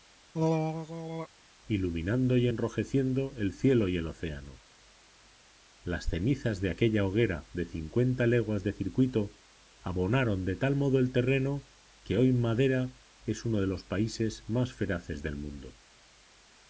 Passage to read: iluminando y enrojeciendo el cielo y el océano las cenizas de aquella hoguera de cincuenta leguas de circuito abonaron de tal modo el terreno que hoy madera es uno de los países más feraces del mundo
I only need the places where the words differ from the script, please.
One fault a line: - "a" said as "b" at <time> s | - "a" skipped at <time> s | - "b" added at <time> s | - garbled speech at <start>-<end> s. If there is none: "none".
none